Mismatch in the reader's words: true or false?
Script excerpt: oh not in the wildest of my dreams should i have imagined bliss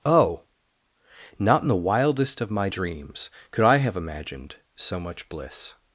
true